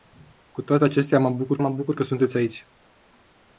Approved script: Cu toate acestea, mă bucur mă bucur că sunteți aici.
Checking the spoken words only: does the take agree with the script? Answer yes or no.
yes